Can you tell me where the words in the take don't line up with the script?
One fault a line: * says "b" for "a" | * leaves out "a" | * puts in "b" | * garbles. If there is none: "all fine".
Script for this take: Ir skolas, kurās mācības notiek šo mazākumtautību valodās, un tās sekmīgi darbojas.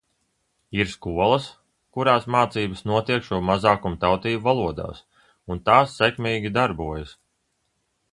all fine